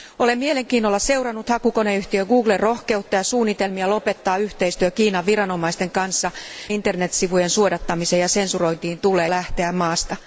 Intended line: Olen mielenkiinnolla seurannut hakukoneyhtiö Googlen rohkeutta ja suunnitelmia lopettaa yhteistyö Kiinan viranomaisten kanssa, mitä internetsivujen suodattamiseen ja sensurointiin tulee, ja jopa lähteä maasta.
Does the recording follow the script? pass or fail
fail